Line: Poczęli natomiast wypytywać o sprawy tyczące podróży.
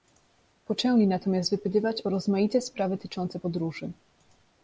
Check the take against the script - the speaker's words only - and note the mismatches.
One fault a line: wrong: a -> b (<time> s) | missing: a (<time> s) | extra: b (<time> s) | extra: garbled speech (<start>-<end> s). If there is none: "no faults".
extra: rozmaite (2.1 s)